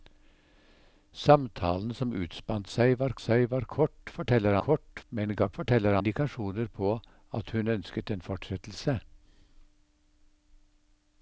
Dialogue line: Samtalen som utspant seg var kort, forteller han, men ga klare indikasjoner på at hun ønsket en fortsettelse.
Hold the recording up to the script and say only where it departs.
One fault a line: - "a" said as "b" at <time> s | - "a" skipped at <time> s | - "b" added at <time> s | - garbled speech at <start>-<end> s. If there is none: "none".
- "seg var" added at 3.2 s
- "han" said as "kort" at 4.7 s
- "klare" said as "forteller" at 5.6 s